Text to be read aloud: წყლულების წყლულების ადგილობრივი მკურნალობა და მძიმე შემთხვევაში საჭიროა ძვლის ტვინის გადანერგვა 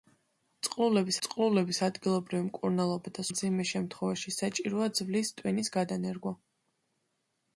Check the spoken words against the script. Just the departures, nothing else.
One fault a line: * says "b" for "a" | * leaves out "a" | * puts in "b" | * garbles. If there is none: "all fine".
all fine